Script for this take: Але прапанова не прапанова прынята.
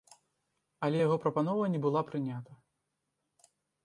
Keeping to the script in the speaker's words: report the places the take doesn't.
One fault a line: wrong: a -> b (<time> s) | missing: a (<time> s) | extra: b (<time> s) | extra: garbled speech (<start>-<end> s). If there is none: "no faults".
extra: яго (1.0 s)
wrong: прапанова -> была (1.8 s)